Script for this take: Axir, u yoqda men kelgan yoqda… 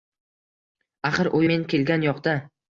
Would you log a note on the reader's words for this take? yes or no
yes